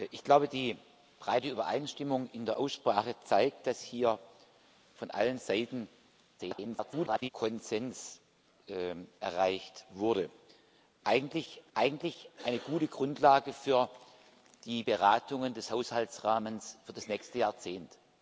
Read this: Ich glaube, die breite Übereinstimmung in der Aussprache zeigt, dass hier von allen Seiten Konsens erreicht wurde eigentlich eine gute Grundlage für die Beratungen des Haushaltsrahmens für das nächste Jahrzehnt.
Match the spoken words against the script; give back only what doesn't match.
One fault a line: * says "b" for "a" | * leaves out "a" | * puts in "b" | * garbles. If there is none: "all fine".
* garbles
* puts in "eigentlich"